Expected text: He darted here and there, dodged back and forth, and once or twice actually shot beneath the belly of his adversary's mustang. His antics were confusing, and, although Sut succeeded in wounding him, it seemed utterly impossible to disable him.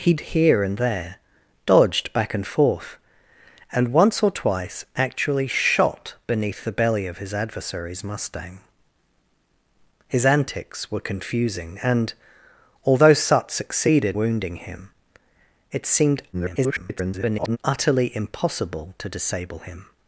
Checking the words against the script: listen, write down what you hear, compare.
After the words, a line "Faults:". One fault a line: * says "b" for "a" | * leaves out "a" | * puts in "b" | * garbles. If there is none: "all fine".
He here and there, dodged back and forth, and once or twice actually shot beneath the belly of his adversary's mustang. His antics were confusing, and, although Sut succeeded wounding him, it seemed [garbled] utterly impossible to disable him.
Faults:
* leaves out "darted"
* leaves out "in"
* garbles